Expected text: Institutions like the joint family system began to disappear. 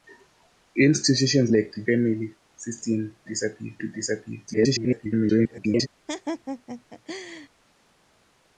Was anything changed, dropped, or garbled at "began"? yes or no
yes